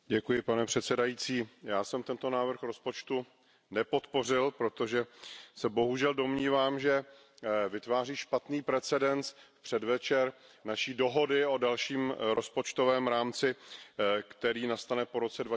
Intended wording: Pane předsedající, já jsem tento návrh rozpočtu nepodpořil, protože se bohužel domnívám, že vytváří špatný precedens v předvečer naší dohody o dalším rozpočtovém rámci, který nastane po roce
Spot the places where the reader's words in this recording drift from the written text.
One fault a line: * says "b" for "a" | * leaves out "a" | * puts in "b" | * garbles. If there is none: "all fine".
all fine